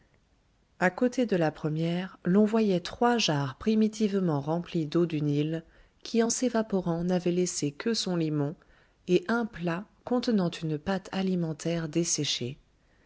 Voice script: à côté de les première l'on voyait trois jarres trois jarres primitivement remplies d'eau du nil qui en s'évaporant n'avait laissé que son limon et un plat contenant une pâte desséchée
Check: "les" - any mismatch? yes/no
yes